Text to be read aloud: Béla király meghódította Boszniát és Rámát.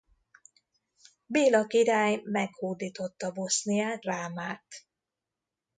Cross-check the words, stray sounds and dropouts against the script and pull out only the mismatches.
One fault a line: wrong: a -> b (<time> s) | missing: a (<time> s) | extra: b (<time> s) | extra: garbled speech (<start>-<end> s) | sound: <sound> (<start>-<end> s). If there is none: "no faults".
missing: és (4.0 s)